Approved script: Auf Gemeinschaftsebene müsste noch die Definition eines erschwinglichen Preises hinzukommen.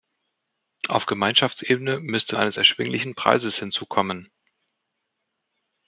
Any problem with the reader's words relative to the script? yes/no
yes